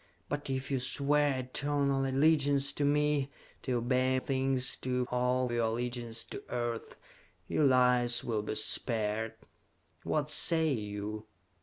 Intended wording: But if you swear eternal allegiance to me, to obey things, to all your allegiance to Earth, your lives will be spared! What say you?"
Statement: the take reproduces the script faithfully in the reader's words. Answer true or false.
true